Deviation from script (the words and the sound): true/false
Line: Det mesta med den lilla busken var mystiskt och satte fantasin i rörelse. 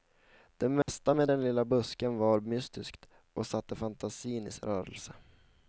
true